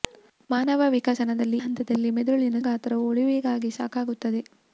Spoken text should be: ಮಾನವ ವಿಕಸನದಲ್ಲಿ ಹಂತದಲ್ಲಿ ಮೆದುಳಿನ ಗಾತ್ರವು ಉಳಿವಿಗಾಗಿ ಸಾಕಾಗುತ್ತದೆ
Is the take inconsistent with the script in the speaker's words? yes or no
no